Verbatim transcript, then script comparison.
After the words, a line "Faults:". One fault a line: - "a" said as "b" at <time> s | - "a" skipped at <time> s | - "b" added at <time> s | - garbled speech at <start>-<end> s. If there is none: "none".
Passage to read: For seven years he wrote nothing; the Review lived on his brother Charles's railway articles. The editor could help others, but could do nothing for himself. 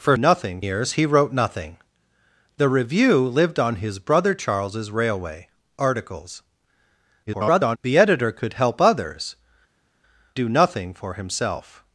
For nothing years he wrote nothing; the Review lived on his brother Charles's railway articles. [garbled] The editor could help others, do nothing for himself.
Faults:
- "seven" said as "nothing" at 0.2 s
- garbled speech at 7.3-7.8 s
- "but could" skipped at 9.4 s